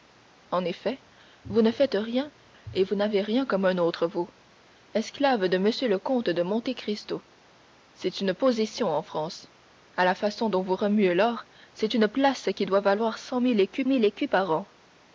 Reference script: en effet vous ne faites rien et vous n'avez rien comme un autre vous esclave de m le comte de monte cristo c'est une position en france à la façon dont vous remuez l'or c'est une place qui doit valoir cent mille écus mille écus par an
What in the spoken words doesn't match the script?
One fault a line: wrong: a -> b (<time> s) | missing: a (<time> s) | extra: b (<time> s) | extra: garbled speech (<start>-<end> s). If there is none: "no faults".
no faults